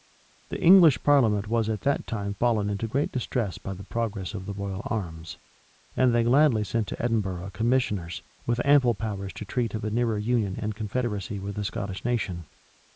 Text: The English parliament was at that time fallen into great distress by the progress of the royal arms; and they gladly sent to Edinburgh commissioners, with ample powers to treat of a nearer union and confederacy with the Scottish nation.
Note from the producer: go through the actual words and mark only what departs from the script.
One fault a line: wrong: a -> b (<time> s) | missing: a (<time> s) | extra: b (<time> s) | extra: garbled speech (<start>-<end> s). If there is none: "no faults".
no faults